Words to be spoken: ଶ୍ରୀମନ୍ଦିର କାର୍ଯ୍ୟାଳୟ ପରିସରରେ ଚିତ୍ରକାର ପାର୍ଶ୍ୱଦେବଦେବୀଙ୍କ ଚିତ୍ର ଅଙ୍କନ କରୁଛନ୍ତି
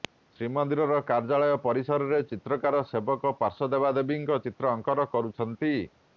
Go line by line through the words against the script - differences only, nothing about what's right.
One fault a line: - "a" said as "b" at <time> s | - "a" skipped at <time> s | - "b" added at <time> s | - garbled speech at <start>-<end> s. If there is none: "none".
- "ସେବକ" added at 2.9 s